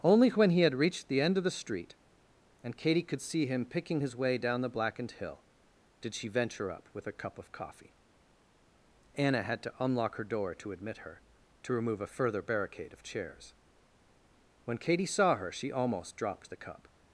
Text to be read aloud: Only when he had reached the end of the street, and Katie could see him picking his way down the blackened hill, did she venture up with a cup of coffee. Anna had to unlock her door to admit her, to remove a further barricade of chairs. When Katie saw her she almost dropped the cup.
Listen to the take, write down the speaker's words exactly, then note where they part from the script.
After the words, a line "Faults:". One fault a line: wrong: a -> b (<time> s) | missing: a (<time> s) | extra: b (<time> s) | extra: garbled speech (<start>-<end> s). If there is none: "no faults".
Only when he had reached the end of the street, and Katie could see him picking his way down the blackened hill, did she venture up with a cup of coffee. Anna had to unlock her door to admit her, to remove a further barricade of chairs. When Katie saw her she almost dropped the cup.
Faults:
no faults